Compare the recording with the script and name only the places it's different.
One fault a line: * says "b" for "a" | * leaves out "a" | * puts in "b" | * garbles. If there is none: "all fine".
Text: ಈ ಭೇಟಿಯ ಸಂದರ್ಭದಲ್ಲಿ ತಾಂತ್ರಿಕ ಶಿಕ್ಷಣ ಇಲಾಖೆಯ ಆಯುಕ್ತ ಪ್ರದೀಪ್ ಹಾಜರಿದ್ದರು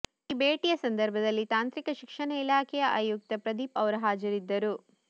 * puts in "ಅವರು"